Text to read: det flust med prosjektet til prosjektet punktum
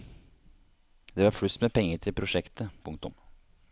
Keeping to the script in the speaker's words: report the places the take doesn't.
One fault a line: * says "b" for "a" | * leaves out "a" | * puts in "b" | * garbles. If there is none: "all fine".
* puts in "var"
* says "penger" for "prosjektet"